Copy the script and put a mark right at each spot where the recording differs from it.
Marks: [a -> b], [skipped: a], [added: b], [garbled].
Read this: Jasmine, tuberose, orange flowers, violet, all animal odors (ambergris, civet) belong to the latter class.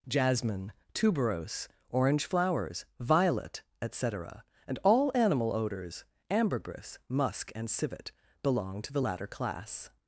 Jasmine, tuberose, orange flowers, violet, [added: et cetera and] all animal odors (ambergris, [added: musk and] civet) belong to the latter class.